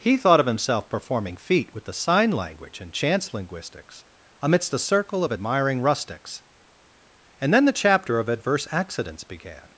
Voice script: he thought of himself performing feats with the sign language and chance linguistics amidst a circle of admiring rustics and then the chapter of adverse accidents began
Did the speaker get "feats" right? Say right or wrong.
wrong